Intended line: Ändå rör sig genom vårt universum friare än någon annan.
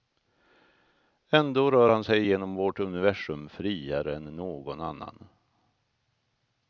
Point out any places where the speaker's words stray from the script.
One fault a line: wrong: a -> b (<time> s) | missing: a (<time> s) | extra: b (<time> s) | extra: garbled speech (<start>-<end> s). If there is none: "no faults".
extra: han (1.9 s)